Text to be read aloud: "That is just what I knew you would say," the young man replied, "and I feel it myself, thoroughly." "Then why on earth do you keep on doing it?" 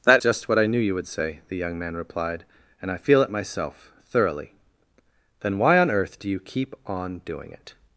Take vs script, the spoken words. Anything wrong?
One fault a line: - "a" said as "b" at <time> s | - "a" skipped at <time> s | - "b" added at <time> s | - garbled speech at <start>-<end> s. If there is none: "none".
- "is" skipped at 0.2 s